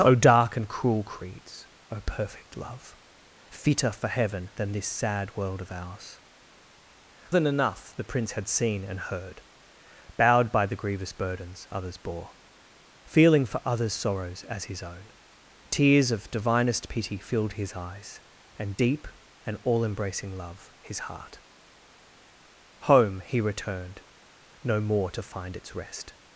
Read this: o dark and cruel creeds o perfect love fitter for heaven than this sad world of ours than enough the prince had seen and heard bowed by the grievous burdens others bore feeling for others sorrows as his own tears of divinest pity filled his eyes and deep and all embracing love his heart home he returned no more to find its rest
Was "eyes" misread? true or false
false